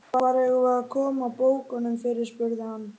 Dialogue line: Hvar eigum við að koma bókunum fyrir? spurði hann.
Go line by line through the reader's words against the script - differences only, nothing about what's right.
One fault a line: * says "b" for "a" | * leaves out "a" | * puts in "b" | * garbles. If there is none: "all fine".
all fine